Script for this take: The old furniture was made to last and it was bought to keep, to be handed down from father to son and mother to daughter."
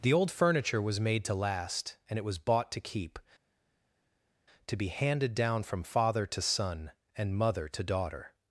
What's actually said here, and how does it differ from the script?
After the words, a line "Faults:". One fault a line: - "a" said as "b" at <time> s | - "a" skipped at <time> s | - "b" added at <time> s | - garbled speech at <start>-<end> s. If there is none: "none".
The old furniture was made to last and it was bought to keep, to be handed down from father to son and mother to daughter."
Faults:
none